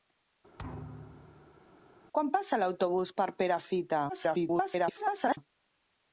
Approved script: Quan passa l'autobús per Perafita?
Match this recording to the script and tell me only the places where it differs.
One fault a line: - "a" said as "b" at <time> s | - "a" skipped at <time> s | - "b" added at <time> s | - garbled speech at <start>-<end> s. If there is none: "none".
- garbled speech at 4.1-5.4 s